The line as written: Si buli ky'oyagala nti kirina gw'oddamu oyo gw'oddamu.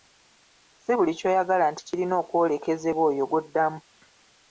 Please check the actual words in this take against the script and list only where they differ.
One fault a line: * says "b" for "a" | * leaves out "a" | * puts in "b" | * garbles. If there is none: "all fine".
* says "okwolekezebwa" for "gw'oddamu"